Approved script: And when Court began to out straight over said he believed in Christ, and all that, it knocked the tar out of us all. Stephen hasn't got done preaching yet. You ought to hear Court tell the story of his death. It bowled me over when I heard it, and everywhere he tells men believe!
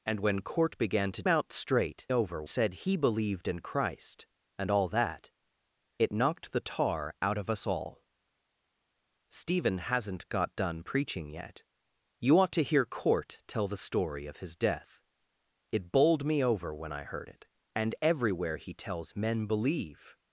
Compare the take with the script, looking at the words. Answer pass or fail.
pass